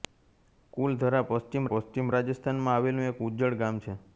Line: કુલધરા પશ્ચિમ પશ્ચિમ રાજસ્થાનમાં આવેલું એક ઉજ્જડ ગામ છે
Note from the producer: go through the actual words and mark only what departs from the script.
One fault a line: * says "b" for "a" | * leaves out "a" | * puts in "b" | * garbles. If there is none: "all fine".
all fine